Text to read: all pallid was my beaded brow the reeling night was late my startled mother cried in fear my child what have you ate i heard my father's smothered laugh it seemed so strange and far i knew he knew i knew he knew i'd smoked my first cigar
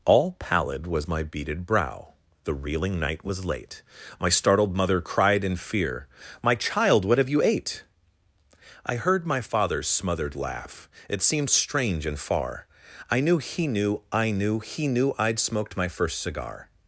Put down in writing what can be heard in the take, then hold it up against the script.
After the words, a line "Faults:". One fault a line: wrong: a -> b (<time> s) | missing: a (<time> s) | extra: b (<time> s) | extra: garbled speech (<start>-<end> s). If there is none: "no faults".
all pallid was my beaded brow the reeling night was late my startled mother cried in fear my child what have you ate i heard my father's smothered laugh it seemed strange and far i knew he knew i knew he knew i'd smoked my first cigar
Faults:
missing: so (11.5 s)